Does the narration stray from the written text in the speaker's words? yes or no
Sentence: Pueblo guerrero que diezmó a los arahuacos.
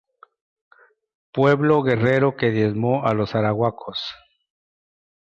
no